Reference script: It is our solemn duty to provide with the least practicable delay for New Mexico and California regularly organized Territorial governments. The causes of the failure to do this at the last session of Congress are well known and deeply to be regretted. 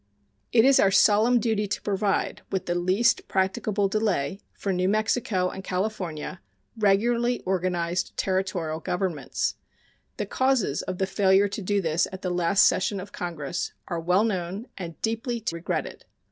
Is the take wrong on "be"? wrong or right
wrong